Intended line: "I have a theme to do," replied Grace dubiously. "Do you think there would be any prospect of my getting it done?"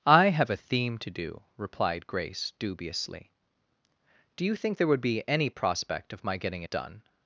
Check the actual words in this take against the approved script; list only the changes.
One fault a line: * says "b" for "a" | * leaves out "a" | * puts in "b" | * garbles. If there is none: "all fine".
all fine